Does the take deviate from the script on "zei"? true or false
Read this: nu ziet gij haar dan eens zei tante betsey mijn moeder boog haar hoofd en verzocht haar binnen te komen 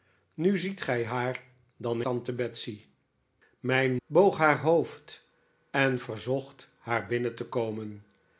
true